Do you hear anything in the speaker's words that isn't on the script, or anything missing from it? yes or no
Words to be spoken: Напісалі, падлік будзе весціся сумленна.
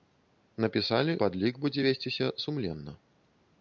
no